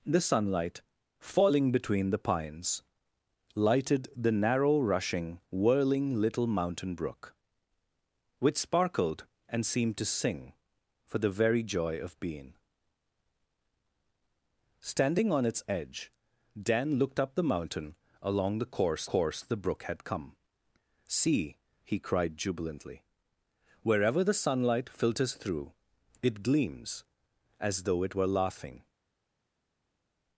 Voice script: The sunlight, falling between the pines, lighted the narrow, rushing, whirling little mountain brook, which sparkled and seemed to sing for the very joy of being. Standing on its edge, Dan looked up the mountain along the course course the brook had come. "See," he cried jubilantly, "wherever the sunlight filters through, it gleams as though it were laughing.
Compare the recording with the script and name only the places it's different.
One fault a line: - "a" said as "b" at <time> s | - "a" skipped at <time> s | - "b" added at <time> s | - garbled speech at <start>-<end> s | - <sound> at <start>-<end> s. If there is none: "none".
none